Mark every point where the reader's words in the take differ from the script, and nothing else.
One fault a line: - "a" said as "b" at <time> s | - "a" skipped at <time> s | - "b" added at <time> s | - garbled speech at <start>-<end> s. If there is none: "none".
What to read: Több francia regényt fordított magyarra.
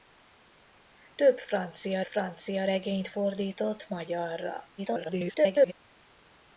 - "francia" added at 2.0 s
- garbled speech at 4.8-5.7 s